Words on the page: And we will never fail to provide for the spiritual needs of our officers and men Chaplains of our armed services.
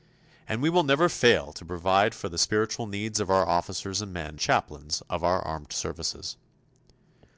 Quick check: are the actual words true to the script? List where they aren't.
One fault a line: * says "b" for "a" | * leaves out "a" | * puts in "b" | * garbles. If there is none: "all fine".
all fine